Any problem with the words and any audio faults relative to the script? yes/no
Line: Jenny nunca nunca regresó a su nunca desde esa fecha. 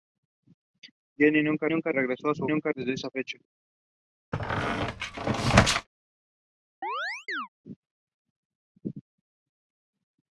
yes